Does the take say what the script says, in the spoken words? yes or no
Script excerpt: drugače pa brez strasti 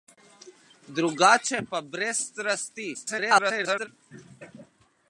no